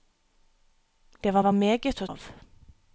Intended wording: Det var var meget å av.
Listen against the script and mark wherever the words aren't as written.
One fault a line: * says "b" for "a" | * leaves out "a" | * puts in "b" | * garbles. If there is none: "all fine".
all fine